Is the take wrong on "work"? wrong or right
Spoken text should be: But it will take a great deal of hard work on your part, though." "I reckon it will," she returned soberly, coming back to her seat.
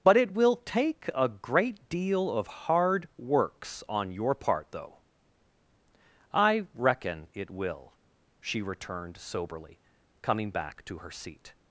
wrong